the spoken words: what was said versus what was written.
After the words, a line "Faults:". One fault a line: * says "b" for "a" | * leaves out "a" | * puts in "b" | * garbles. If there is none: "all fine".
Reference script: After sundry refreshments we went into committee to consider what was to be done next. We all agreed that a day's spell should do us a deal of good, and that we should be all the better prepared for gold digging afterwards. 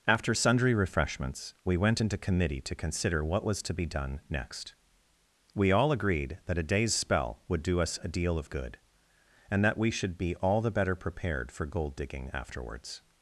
After sundry refreshments we went into committee to consider what was to be done next. We all agreed that a day's spell would do us a deal of good, and that we should be all the better prepared for gold digging afterwards.
Faults:
* says "would" for "should"